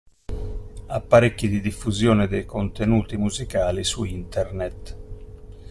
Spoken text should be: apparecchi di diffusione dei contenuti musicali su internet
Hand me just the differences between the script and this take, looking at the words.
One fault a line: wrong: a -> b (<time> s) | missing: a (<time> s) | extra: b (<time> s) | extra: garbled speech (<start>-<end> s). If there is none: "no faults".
no faults